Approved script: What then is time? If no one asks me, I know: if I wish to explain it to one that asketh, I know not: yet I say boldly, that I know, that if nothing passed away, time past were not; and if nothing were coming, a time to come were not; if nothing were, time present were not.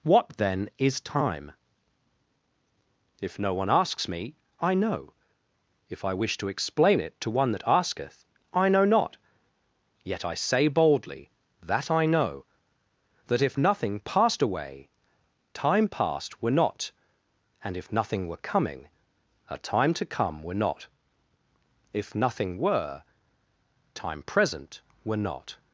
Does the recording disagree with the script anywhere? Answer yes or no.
no